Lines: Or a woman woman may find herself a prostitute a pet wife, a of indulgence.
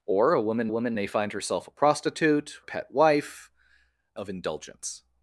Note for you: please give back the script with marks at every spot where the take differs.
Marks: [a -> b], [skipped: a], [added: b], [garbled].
Or a woman woman may find herself a prostitute a pet wife, a of indulgence.